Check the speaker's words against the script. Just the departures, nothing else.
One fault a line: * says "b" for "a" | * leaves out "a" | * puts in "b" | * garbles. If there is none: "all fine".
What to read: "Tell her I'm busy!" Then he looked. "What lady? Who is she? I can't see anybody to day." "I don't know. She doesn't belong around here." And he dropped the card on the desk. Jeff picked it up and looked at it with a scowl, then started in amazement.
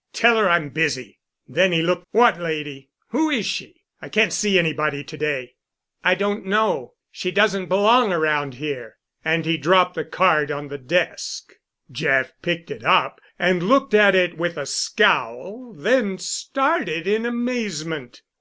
all fine